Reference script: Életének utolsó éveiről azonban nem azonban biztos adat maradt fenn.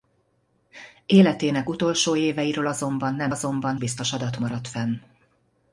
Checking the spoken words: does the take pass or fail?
pass